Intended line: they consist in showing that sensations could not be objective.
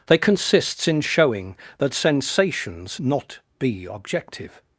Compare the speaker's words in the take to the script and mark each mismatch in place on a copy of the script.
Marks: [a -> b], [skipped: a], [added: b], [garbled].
they [consist -> consists] in showing that sensations [skipped: could] not be objective.